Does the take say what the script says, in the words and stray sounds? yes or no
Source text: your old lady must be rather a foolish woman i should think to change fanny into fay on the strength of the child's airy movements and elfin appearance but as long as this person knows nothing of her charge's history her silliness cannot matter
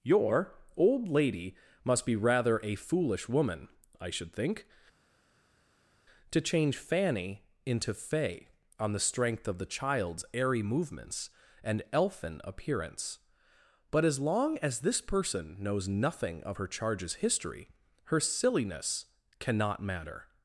yes